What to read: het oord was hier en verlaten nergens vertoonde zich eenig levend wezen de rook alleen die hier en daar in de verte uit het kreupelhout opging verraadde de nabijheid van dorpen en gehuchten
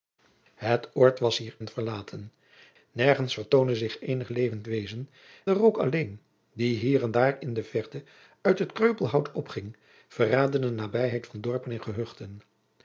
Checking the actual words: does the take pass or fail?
pass